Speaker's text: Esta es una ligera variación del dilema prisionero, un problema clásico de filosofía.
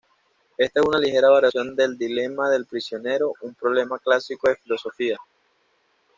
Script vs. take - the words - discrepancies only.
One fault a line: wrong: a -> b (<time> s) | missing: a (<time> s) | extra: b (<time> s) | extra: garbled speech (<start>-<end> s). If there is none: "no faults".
extra: del (2.5 s)